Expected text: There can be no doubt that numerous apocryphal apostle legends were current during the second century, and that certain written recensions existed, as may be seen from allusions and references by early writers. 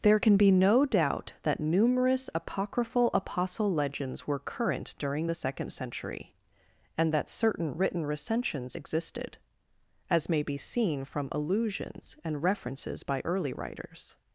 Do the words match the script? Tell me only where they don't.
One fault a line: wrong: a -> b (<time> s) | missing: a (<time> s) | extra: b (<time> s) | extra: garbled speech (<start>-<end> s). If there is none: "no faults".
no faults